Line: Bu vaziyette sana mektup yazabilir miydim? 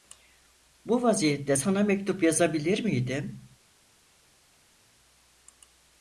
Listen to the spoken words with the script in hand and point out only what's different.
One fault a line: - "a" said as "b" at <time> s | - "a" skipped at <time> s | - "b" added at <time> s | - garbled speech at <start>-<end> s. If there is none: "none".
none